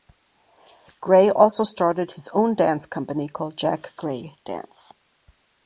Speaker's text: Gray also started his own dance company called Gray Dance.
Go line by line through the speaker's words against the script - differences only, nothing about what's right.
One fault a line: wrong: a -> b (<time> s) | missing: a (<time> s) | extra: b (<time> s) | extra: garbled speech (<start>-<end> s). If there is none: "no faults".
extra: Jack (3.5 s)